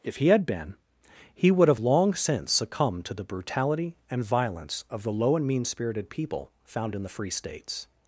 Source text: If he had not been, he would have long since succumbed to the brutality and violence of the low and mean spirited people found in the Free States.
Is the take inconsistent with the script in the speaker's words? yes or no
yes